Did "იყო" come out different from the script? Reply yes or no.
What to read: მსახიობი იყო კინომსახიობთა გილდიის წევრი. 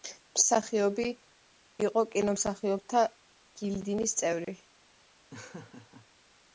no